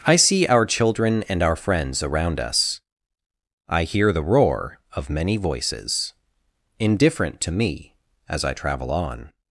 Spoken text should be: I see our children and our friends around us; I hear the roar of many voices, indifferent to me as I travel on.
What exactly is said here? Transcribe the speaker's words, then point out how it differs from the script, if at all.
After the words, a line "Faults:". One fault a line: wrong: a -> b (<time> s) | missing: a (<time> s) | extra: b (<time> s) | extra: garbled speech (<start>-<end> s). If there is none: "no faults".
I see our children and our friends around us; I hear the roar of many voices, indifferent to me as I travel on.
Faults:
no faults